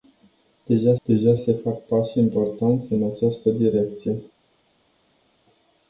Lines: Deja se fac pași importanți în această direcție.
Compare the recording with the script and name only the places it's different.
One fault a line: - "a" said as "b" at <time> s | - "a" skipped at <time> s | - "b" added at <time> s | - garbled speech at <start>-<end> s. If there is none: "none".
- "deja" added at 1.0 s